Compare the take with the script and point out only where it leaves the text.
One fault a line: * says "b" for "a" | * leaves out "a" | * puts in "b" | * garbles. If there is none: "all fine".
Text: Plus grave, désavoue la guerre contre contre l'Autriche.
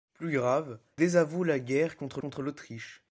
all fine